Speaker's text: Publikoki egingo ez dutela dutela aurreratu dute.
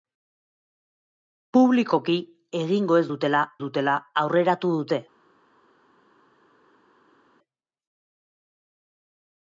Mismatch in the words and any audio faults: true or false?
false